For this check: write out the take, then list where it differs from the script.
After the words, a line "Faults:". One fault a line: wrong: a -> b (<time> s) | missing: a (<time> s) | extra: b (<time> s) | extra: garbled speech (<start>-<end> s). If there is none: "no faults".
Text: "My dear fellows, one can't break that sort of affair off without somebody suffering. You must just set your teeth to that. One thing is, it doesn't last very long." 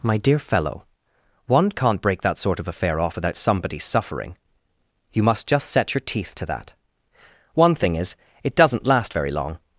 "My dear fellow, one can't break that sort of affair off without somebody suffering. You must just set your teeth to that. One thing is, it doesn't last very long."
Faults:
wrong: fellows -> fellow (0.4 s)